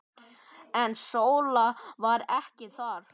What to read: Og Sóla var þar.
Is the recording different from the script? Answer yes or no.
yes